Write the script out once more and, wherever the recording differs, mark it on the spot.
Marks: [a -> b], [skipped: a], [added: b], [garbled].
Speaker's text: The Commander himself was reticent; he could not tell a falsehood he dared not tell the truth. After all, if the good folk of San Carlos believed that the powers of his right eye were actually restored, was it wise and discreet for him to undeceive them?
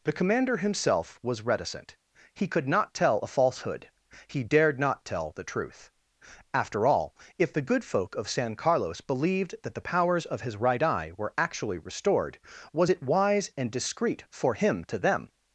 The Commander himself was reticent; he could not tell a falsehood he dared not tell the truth. After all, if the good folk of San Carlos believed that the powers of his right eye were actually restored, was it wise and discreet for him to [skipped: undeceive] them?